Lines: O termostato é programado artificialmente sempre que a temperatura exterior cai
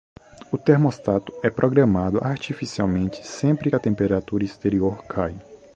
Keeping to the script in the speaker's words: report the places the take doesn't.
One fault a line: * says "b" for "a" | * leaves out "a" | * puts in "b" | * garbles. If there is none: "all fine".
* leaves out "que"